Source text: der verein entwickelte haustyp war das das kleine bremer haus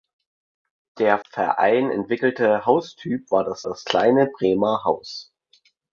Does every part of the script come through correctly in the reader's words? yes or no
yes